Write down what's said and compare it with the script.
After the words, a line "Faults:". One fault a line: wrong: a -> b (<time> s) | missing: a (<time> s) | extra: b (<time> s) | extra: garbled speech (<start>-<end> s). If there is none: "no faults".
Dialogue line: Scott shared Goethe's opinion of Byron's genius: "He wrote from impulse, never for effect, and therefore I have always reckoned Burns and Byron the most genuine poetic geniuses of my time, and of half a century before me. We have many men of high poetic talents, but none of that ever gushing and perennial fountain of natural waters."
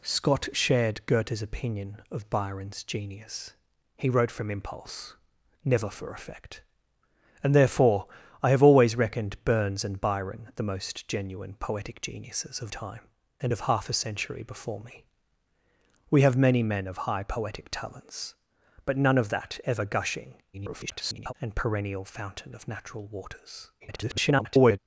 Scott shared Goethe's opinion of Byron's genius: "He wrote from impulse, never for effect, and therefore I have always reckoned Burns and Byron the most genuine poetic geniuses of time, and of half a century before me. We have many men of high poetic talents, but none of that ever gushing [garbled] and perennial fountain of natural waters." [garbled]
Faults:
missing: my (12.7 s)
extra: garbled speech (20.5-21.3 s)
extra: garbled speech (23.8-24.8 s)